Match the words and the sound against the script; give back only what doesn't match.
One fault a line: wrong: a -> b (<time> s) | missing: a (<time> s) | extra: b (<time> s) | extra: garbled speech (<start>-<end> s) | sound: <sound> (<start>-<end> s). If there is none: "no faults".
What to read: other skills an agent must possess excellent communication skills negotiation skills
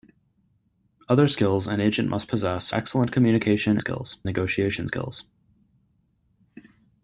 no faults